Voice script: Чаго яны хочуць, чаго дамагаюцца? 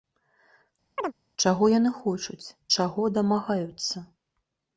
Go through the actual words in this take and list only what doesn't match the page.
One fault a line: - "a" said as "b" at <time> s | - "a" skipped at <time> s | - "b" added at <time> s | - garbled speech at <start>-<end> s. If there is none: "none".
none